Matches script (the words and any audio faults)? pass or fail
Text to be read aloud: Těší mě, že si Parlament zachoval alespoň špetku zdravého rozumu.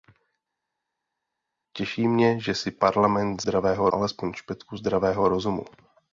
fail